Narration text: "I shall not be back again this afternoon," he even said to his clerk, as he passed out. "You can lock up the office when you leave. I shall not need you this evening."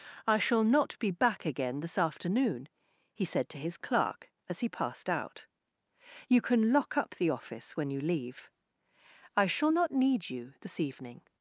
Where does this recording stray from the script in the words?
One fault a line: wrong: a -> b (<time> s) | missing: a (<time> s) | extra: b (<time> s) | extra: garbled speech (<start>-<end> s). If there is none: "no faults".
missing: even (3.2 s)